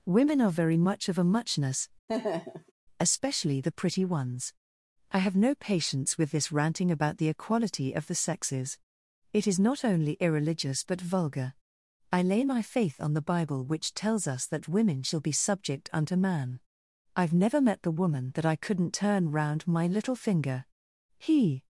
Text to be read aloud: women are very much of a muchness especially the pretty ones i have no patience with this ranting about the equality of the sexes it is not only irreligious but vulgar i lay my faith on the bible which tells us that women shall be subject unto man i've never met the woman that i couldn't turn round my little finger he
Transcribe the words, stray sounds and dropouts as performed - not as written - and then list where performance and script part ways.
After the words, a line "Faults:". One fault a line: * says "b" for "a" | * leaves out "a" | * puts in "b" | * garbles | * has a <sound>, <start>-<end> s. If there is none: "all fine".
women are very much of a muchness especially the pretty ones i have no patience with this ranting about the equality of the sexes it is not only irreligious but vulgar i lay my faith on the bible which tells us that women shall be subject unto man i've never met the woman that i couldn't turn round my little finger he
Faults:
* has a laugh, 2.1-2.7 s